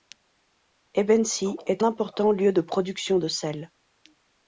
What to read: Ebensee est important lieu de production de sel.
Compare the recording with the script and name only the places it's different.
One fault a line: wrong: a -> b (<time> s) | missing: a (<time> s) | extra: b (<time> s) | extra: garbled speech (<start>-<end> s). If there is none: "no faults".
no faults